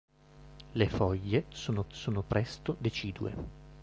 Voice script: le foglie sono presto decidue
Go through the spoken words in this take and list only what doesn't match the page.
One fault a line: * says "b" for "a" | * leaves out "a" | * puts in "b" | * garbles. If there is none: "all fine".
* puts in "sono"